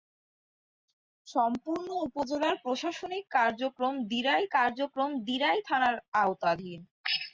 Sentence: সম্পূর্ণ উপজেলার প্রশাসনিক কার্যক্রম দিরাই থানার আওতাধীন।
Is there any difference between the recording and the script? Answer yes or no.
yes